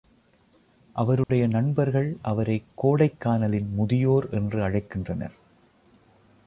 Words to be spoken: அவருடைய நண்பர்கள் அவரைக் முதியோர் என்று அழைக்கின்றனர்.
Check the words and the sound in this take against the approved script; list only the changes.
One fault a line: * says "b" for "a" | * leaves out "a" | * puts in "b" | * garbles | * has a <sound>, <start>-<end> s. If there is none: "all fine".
* has a dropout, 1.2-1.3 s
* puts in "கோடைக்கானலின்"